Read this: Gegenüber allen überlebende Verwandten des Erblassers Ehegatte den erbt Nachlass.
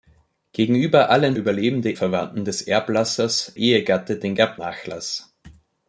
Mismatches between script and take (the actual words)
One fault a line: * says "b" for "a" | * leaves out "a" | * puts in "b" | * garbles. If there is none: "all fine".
all fine